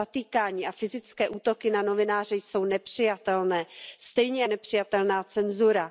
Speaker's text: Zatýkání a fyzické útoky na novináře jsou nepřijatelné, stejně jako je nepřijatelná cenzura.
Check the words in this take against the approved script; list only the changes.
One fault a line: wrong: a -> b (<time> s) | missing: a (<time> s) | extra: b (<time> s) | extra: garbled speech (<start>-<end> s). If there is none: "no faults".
missing: jako (4.4 s)